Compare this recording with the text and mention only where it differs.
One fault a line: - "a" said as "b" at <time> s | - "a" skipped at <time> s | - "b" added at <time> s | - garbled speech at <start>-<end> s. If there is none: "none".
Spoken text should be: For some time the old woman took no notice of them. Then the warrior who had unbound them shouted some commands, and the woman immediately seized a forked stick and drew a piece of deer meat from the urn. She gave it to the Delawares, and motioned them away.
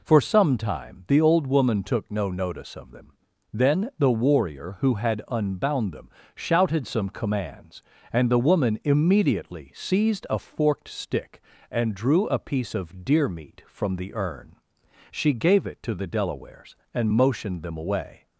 none